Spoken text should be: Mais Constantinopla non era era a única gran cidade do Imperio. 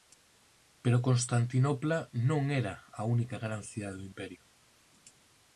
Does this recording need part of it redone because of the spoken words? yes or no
yes